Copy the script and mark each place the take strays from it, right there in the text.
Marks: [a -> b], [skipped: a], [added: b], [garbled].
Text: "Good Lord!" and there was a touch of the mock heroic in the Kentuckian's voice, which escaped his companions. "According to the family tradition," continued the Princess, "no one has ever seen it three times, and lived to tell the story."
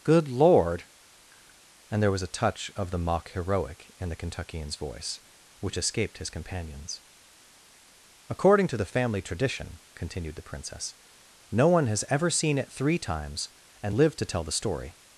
"Good Lord!" and there was a touch of the mock heroic in the Kentuckian's voice, which escaped his companions. "According to the family tradition," continued the Princess, "no one has ever seen it three times, and lived to tell the story."